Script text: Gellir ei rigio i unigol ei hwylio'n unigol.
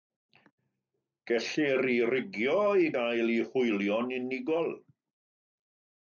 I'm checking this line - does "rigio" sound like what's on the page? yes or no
yes